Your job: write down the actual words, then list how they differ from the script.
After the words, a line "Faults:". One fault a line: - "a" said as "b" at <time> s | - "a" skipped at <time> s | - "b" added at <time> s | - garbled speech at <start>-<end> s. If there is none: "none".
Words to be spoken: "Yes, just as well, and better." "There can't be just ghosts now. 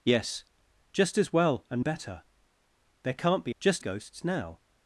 "Yes, just as well, and better." "There can't be just ghosts now.
Faults:
none